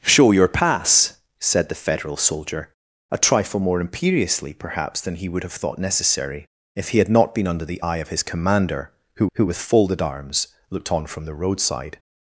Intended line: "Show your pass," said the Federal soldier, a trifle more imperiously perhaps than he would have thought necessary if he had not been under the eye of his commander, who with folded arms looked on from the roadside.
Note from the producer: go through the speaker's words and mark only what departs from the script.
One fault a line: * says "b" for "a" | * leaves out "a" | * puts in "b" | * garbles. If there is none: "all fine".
* puts in "who"